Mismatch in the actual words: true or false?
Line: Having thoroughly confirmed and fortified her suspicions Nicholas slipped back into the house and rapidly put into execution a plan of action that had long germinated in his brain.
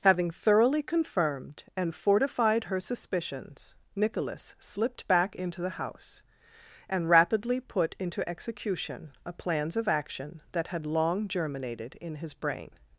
true